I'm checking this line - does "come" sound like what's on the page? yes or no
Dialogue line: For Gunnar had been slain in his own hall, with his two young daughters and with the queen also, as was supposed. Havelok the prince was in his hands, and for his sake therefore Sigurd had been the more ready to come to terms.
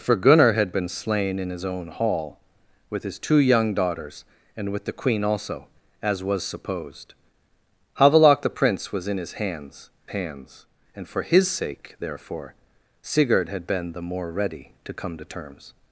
yes